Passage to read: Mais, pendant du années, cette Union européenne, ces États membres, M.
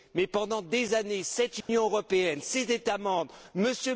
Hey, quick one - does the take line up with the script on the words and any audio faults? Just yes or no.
no